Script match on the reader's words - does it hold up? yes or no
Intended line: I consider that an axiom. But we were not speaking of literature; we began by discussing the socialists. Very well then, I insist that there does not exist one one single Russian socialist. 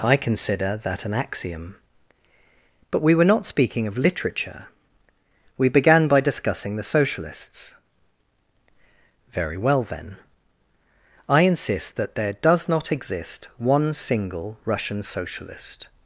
no